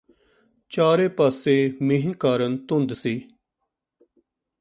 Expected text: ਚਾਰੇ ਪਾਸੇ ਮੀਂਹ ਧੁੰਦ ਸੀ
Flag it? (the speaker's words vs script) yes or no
yes